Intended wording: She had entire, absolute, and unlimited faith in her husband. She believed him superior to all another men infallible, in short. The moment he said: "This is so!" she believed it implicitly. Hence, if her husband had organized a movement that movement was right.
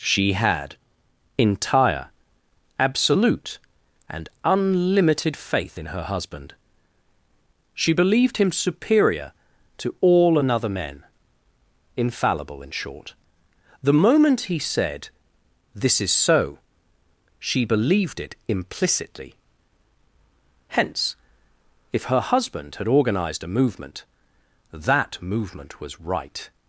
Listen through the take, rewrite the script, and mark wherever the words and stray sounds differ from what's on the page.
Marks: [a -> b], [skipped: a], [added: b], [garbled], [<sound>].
She had entire, absolute, and unlimited faith in her husband. She believed him superior to all another men infallible, in short. The moment he said: "This is so!" she believed it implicitly. Hence, if her husband had organized a movement that movement was right.